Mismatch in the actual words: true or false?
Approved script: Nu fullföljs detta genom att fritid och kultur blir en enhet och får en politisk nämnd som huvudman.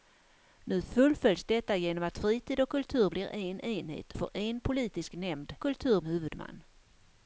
true